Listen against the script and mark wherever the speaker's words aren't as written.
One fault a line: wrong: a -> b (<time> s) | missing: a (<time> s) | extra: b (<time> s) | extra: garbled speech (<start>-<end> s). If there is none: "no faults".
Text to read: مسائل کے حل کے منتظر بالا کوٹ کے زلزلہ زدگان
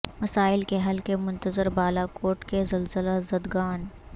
no faults